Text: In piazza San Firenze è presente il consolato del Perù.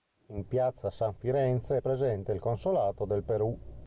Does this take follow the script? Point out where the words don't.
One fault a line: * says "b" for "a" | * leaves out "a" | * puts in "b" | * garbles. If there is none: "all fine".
all fine